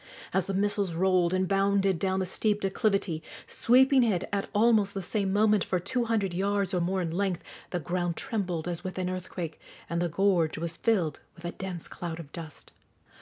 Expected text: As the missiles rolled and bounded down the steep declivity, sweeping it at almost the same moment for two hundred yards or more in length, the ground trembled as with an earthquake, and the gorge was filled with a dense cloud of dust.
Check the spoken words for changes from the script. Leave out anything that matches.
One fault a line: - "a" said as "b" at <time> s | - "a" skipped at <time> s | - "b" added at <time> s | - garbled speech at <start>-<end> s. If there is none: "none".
none